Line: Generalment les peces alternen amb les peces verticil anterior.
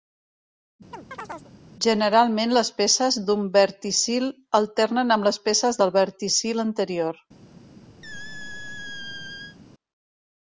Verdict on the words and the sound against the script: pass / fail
fail